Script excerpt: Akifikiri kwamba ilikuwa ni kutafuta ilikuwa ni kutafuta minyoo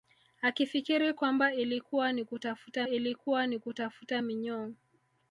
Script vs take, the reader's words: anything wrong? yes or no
no